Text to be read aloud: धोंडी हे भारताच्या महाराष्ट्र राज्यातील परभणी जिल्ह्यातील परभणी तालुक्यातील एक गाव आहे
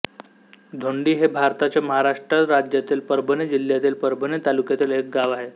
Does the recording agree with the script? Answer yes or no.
yes